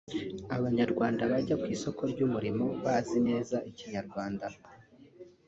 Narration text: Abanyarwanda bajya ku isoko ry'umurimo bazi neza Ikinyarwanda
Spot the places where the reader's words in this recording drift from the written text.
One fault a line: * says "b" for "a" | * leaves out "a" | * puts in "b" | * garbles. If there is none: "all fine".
all fine